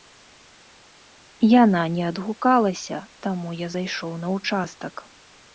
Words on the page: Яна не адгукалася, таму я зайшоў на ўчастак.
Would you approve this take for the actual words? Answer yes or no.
yes